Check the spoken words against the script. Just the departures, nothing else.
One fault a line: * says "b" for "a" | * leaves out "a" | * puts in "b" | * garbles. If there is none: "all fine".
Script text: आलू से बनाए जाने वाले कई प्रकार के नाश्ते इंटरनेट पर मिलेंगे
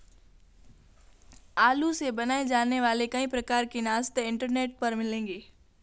all fine